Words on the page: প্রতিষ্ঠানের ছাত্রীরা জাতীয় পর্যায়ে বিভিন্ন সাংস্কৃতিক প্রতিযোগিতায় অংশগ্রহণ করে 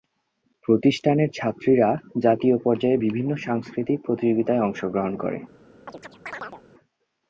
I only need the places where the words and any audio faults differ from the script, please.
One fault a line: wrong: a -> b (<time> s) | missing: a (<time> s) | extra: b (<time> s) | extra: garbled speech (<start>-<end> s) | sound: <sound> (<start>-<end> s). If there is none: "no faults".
sound: chirp (5.9-6.6 s)